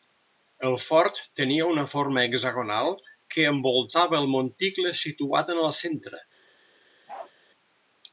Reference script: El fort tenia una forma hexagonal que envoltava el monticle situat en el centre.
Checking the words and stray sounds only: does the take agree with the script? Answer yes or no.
no